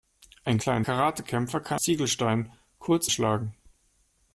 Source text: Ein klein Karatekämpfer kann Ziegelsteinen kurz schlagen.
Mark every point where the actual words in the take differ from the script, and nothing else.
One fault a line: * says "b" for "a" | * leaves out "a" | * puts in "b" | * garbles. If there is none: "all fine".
all fine